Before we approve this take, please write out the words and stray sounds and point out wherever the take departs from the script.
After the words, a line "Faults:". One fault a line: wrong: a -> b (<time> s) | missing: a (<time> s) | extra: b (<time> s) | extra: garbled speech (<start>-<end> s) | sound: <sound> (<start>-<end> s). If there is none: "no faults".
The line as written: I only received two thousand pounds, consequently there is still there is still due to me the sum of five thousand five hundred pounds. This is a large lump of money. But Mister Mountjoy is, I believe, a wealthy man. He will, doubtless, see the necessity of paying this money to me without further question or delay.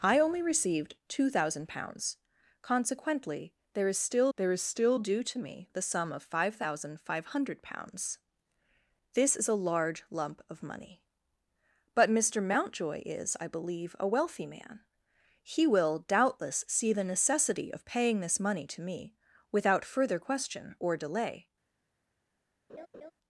I only received two thousand pounds, consequently there is still there is still due to me the sum of five thousand five hundred pounds. This is a large lump of money. But Mister Mountjoy is, I believe, a wealthy man. He will, doubtless, see the necessity of paying this money to me without further question or delay.
Faults:
sound: laugh (22.7-23.1 s)